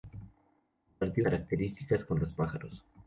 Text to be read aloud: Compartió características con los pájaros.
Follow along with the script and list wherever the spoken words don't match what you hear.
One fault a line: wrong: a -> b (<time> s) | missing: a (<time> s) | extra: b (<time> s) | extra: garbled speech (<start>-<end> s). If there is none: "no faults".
no faults